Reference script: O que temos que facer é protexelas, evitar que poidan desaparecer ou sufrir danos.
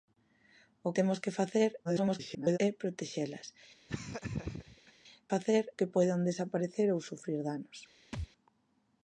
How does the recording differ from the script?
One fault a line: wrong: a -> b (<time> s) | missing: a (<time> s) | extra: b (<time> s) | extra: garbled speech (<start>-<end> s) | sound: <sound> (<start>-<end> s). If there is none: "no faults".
missing: que (0.9 s)
extra: garbled speech (1.8-2.6 s)
sound: laugh (3.9-4.9 s)
wrong: evitar -> facer (5.3 s)
sound: thud (8.1-8.3 s)